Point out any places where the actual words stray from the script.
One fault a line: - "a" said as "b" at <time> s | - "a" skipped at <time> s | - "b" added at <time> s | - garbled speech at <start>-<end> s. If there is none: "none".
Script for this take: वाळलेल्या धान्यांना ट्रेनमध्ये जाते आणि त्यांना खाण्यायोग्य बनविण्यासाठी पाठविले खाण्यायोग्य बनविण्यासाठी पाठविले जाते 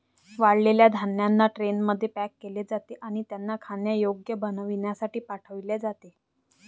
- "पॅक केले" added at 2.1 s
- "खाण्यायोग्य बनविण्यासाठी पाठविले" skipped at 5.8 s